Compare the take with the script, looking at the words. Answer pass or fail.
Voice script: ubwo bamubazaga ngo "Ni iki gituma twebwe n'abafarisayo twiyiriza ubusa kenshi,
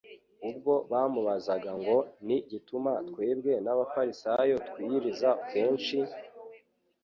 fail